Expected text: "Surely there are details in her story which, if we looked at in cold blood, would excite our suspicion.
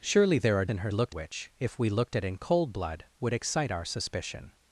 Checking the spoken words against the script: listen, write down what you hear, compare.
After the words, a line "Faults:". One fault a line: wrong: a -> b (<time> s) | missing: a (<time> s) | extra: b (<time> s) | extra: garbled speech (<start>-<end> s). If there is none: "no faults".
"Surely there are in her looked which, if we looked at in cold blood, would excite our suspicion.
Faults:
missing: details (0.7 s)
wrong: story -> looked (0.9 s)